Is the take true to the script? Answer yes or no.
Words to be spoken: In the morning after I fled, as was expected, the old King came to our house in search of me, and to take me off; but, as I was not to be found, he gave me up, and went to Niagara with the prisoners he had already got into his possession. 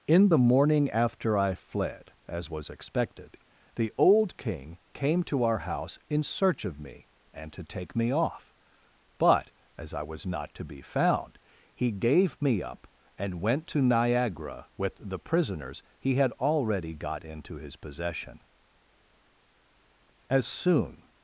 no